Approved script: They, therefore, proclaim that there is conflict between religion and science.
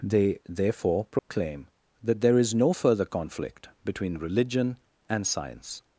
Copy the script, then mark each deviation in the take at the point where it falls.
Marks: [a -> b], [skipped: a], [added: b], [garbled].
They, therefore, proclaim that there is [added: no further] conflict between religion and science.